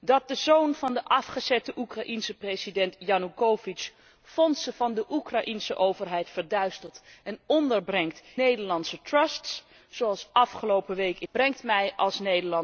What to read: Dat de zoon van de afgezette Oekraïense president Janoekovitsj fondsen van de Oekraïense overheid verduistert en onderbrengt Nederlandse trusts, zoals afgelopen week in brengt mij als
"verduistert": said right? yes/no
yes